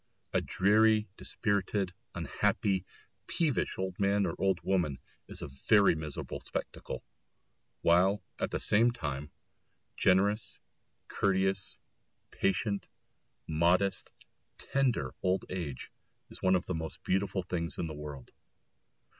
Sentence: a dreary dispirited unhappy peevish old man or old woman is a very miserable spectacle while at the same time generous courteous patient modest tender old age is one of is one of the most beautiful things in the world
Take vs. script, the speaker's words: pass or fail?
fail